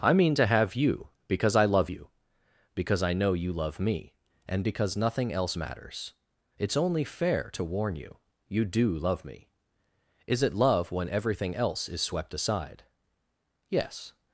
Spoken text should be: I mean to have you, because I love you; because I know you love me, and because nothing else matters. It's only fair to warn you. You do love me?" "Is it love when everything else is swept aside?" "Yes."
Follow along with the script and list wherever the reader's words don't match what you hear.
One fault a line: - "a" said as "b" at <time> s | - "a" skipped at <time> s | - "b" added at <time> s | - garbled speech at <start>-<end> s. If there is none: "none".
none